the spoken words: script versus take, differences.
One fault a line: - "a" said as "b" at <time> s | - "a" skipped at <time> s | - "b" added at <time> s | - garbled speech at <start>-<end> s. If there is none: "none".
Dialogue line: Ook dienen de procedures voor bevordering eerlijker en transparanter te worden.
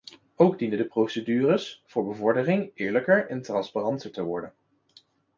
none